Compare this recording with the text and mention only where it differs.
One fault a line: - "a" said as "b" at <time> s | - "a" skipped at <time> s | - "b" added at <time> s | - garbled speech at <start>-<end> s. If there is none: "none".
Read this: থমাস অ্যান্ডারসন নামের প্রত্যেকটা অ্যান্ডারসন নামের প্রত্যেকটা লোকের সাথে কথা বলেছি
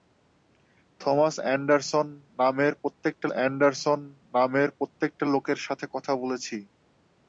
none